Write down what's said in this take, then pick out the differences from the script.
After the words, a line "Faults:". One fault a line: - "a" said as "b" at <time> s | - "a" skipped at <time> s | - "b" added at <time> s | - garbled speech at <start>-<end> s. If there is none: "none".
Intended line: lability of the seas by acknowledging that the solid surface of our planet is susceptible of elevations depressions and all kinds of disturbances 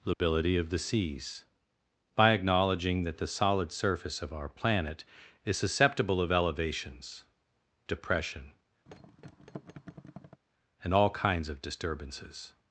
lability of the seas by acknowledging that the solid surface of our planet is susceptible of elevations depression and all kinds of disturbances
Faults:
- "depressions" said as "depression" at 7.9 s